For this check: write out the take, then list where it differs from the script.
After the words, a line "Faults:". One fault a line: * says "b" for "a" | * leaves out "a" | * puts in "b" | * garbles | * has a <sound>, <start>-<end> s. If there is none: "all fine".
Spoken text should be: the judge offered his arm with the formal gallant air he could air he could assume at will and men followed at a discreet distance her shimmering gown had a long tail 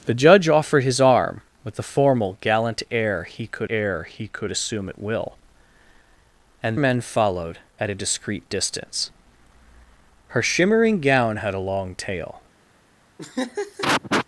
the judge offered his arm with the formal gallant air he could air he could assume at will and men followed at a discreet distance her shimmering gown had a long tail
Faults:
* has a laugh, 13.2-14.3 s